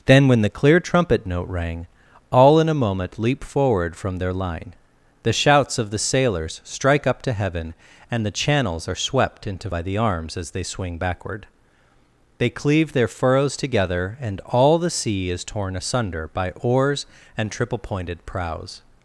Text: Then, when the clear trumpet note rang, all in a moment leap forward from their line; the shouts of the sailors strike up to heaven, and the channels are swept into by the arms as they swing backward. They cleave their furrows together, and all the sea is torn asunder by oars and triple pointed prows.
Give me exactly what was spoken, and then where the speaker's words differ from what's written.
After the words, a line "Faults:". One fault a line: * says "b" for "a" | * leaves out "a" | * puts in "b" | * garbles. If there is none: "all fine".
Then, when the clear trumpet note rang, all in a moment leap forward from their line; the shouts of the sailors strike up to heaven, and the channels are swept into by the arms as they swing backward. They cleave their furrows together, and all the sea is torn asunder by oars and triple pointed prows.
Faults:
all fine